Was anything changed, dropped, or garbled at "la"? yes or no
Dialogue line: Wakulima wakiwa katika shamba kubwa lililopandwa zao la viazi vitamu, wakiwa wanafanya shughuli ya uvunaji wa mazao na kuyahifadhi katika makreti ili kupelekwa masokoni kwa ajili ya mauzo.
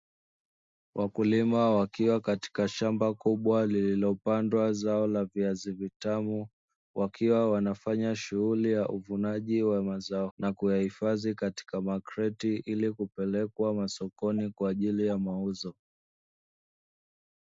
no